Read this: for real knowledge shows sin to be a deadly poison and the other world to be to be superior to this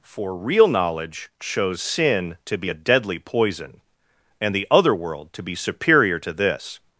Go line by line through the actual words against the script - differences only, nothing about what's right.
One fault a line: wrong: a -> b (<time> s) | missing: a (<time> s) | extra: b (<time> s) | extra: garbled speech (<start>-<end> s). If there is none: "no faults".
missing: to be (5.6 s)